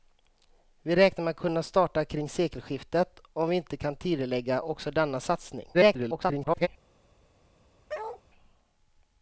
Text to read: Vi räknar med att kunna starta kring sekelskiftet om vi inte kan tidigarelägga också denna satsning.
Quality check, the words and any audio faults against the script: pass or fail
fail